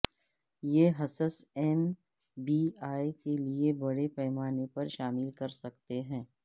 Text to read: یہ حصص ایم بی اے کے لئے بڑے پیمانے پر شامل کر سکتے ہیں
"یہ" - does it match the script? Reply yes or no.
yes